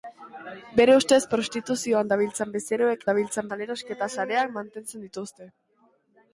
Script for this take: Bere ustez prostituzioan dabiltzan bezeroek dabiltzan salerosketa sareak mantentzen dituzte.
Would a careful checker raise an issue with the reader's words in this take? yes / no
no